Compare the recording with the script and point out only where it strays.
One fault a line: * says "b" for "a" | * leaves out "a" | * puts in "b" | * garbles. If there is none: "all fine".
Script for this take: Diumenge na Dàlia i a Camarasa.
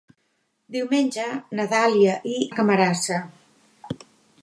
all fine